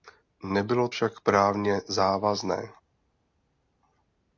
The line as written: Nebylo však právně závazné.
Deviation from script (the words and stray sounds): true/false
false